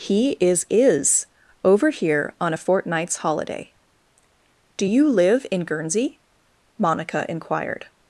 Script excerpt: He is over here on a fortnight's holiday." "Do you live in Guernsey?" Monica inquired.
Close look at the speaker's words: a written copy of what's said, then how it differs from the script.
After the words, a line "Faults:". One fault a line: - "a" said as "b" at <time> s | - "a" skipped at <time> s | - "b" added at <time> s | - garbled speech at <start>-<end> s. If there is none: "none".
He is is over here on a fortnight's holiday." "Do you live in Guernsey?" Monica inquired.
Faults:
- "is" added at 0.7 s